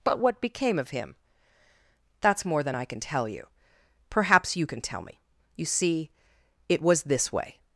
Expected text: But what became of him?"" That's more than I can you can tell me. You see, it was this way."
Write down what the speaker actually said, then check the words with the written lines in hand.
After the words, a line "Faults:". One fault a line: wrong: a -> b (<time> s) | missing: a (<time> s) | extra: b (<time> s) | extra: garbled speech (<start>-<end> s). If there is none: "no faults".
But what became of him?"" That's more than I can tell you. Perhaps you can tell me. You see, it was this way."
Faults:
extra: tell you Perhaps (3.0 s)